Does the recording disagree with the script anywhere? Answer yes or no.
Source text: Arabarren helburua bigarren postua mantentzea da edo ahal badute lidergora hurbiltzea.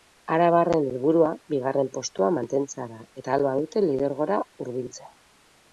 yes